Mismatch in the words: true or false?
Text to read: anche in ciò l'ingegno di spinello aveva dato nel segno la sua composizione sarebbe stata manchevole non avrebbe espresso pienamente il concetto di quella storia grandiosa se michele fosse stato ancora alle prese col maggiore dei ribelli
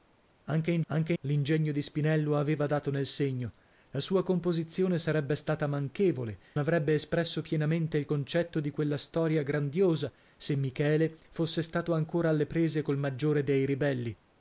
true